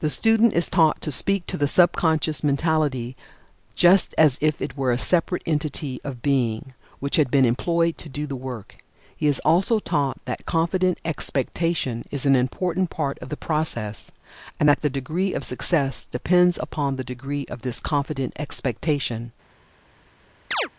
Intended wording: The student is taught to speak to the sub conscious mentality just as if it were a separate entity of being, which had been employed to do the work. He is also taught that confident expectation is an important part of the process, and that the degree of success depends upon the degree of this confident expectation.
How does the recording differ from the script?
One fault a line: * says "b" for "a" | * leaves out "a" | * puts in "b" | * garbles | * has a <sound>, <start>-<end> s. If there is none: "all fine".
* has a chirp, 20.5-20.7 s